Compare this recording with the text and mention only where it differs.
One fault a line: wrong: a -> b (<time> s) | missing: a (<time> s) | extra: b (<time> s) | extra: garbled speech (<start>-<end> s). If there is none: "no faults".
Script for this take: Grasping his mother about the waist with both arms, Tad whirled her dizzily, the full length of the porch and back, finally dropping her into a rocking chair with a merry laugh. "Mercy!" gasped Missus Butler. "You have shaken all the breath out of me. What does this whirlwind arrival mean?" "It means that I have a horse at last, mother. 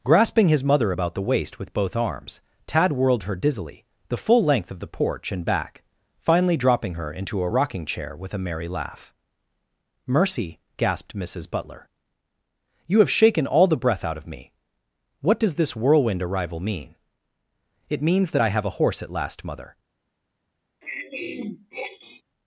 no faults